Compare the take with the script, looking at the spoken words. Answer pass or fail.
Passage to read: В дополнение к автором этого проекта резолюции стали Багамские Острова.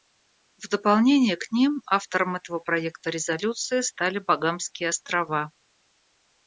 fail